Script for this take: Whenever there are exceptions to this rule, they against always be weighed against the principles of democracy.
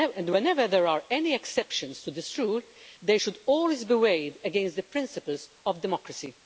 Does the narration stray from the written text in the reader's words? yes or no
yes